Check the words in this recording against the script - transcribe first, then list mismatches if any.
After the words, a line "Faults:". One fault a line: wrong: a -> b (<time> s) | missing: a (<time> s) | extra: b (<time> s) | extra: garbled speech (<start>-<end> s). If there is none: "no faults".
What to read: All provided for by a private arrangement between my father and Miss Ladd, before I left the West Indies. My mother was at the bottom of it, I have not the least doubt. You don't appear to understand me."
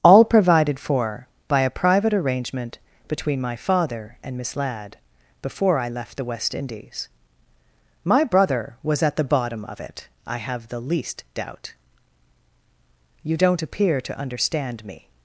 All provided for by a private arrangement between my father and Miss Ladd, before I left the West Indies. My brother was at the bottom of it, I have the least doubt. You don't appear to understand me."
Faults:
wrong: mother -> brother (8.2 s)
missing: not (10.7 s)